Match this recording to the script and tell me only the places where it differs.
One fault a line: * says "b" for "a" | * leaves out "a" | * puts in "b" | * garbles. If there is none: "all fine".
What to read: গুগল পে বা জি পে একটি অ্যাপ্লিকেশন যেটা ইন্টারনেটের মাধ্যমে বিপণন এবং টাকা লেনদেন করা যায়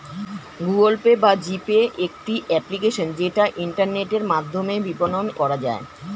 * leaves out "এবং টাকা লেনদেন"